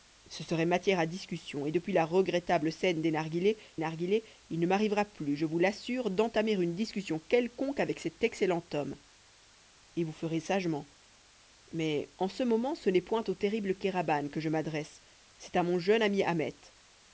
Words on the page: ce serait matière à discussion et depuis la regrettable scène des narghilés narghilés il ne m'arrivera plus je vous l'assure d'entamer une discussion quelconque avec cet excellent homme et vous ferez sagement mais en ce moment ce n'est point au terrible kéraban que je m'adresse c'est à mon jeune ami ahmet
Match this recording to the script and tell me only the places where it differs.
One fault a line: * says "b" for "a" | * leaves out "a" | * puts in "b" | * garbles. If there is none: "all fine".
all fine